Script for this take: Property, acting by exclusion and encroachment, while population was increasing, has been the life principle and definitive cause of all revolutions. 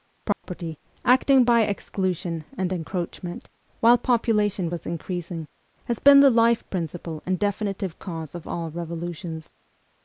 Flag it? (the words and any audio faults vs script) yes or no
yes